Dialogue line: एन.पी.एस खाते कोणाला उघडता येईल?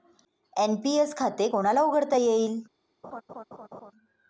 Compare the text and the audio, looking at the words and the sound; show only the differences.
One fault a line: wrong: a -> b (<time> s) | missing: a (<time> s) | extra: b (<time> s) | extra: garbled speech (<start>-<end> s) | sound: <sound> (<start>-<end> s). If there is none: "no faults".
sound: laugh (3.0-3.9 s)